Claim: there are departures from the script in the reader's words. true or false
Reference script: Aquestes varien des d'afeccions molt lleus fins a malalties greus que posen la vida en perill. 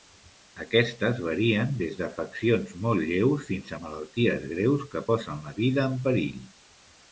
false